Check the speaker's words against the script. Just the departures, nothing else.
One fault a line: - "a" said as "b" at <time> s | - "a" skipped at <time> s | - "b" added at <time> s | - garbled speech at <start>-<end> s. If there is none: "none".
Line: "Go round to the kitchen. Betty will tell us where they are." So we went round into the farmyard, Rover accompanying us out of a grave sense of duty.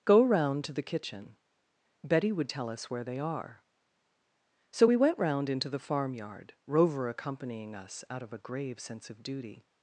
- "will" said as "would" at 2.3 s